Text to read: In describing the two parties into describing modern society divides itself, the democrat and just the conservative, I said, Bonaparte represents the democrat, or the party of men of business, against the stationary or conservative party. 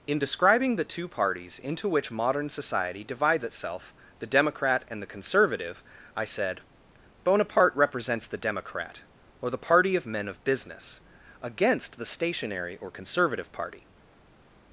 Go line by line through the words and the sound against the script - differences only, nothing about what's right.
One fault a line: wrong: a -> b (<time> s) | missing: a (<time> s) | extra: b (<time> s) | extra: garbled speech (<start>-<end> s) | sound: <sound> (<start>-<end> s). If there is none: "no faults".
wrong: describing -> which (1.9 s)
missing: just (5.0 s)